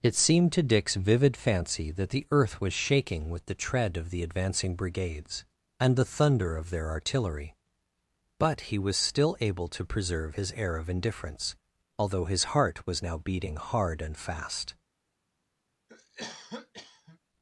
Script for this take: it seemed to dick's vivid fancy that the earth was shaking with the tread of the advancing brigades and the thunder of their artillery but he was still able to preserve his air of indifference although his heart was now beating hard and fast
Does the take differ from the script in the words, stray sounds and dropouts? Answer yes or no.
yes